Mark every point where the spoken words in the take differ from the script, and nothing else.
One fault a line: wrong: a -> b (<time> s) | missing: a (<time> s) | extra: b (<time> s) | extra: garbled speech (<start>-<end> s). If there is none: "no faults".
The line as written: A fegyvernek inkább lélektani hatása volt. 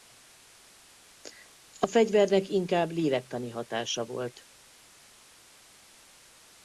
no faults